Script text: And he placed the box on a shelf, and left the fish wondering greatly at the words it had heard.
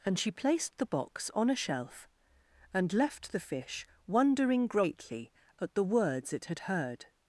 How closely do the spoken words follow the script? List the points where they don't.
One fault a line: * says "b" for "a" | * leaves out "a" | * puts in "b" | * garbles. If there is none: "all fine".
* says "she" for "he"